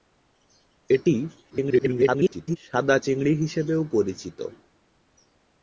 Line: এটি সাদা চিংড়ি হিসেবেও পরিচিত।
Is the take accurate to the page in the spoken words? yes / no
no